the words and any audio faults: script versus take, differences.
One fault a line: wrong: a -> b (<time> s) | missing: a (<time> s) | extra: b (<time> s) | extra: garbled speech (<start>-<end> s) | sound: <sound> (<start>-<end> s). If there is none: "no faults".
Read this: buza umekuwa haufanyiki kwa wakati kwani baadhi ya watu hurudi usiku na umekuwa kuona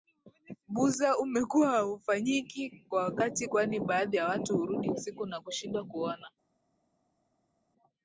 wrong: umekuwa -> kushindwa (5.4 s)